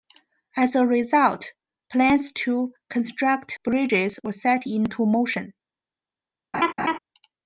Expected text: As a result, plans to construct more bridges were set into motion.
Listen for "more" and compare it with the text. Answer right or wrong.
wrong